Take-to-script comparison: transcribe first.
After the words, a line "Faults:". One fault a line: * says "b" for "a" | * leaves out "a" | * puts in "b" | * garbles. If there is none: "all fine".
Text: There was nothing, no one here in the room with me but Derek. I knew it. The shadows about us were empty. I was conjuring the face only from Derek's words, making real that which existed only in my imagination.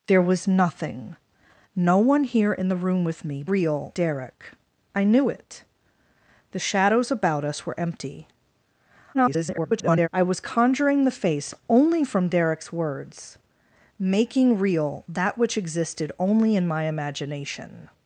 There was nothing, no one here in the room with me real Derek. I knew it. The shadows about us were empty. [garbled] I was conjuring the face only from Derek's words, making real that which existed only in my imagination.
Faults:
* says "real" for "but"
* garbles